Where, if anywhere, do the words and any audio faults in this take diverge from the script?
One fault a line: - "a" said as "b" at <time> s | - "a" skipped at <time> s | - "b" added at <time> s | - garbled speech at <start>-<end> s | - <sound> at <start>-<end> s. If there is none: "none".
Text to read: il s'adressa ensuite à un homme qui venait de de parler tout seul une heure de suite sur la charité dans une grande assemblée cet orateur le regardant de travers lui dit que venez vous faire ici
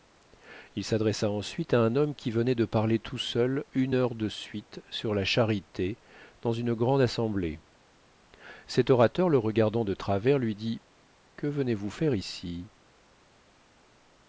- "de" skipped at 2.6 s